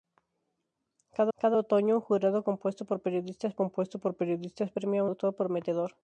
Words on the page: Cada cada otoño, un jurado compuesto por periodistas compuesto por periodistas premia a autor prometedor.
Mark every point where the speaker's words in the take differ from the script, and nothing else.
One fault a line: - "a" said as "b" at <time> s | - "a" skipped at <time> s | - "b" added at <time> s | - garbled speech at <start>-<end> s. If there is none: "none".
none